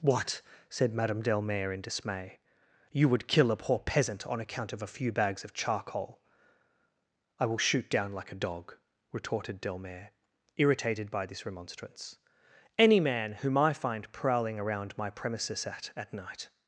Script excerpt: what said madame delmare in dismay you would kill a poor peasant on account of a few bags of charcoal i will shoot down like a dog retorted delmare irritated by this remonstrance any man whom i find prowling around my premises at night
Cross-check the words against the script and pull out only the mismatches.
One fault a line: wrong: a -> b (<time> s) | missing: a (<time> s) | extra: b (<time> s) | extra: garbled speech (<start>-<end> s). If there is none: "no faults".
extra: at (16.0 s)